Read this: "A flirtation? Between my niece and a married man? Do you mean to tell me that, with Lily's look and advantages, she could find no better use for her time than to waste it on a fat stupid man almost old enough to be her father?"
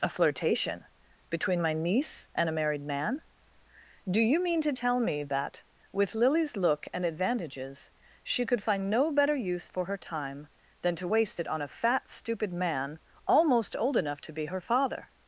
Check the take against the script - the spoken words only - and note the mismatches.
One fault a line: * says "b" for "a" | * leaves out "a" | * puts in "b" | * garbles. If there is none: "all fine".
all fine